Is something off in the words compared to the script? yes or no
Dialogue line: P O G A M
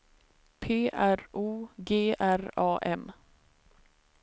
yes